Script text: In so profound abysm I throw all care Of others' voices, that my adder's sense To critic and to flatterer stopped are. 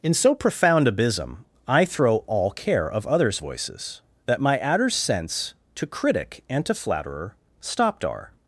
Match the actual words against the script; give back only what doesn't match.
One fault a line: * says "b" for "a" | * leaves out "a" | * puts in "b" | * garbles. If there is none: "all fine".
all fine